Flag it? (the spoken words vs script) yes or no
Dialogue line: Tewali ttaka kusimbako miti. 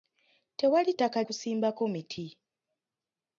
no